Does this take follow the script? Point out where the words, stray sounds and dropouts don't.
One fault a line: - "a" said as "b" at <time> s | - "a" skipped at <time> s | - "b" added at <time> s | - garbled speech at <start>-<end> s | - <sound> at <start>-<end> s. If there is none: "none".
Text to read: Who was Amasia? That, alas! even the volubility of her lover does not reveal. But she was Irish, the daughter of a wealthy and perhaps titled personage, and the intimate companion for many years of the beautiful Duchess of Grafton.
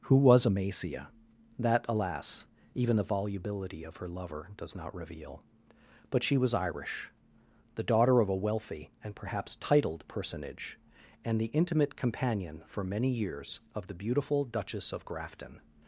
none